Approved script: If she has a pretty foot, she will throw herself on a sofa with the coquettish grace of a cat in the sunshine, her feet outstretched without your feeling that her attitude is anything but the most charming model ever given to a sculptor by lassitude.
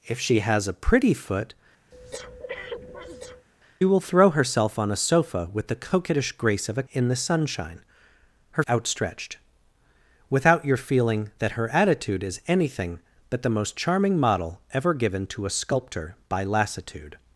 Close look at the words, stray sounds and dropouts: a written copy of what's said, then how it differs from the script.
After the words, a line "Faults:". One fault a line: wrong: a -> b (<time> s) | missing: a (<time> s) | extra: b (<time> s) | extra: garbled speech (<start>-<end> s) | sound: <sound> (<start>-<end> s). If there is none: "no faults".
If she has a pretty foot, will throw herself on a sofa with the coquettish grace of a in the sunshine, her outstretched without your feeling that her attitude is anything but the most charming model ever given to a sculptor by lassitude.
Faults:
missing: she (1.5 s)
sound: breath (1.9-3.5 s)
missing: cat (6.8 s)
missing: feet (8.6 s)